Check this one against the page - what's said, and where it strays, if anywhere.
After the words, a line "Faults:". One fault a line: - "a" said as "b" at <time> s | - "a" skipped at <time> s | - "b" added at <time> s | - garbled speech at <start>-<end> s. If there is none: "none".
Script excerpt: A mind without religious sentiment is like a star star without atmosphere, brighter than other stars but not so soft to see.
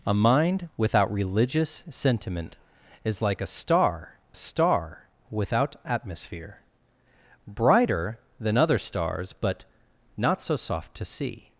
A mind without religious sentiment is like a star star without atmosphere, brighter than other stars but not so soft to see.
Faults:
none